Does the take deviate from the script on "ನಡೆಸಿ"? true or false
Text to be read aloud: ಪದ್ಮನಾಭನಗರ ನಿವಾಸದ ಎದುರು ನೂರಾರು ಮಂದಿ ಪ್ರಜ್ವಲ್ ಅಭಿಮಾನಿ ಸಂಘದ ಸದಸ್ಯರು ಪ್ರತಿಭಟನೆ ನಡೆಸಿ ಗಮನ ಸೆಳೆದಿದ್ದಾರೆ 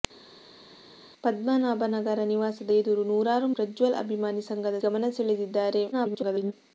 true